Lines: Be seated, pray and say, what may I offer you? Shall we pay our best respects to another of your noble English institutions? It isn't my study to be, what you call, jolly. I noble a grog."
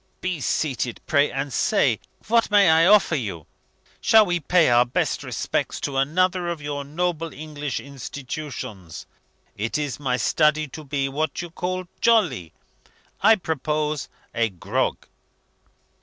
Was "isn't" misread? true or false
true